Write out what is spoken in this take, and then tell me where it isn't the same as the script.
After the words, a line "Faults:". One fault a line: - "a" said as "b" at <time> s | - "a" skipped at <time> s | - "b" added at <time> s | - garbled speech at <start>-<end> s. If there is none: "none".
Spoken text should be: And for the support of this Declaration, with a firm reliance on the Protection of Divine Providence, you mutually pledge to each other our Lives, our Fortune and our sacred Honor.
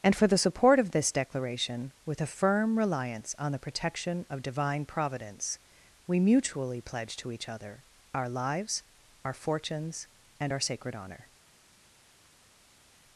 And for the support of this Declaration, with a firm reliance on the Protection of Divine Providence, we mutually pledge to each other our Lives, our Fortunes and our sacred Honor.
Faults:
- "you" said as "we" at 6.1 s
- "Fortune" said as "Fortunes" at 9.3 s